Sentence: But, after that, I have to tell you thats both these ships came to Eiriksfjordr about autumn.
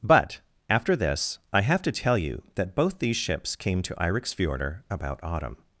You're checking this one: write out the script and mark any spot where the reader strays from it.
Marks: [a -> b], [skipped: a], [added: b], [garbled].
But, after [that, -> this] I have to tell you [thats -> that] both these ships came to Eiriksfjordr about autumn.